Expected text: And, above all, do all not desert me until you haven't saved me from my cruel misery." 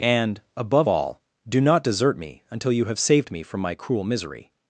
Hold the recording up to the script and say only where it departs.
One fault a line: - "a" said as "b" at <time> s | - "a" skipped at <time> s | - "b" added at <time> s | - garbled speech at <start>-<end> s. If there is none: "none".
- "all" skipped at 1.6 s
- "haven't" said as "have" at 2.8 s